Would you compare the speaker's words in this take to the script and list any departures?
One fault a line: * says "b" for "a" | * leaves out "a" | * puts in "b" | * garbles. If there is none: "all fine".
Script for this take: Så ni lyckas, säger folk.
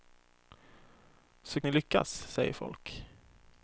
all fine